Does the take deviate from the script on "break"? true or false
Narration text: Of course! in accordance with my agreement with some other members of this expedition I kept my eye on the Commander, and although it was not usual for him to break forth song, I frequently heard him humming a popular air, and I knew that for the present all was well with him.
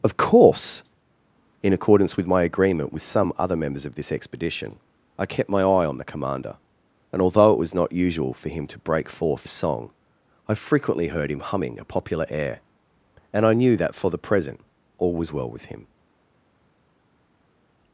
false